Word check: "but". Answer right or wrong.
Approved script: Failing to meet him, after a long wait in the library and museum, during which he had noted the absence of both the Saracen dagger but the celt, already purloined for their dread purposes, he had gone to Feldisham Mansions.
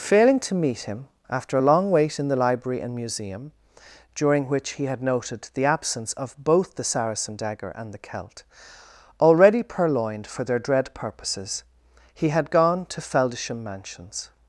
wrong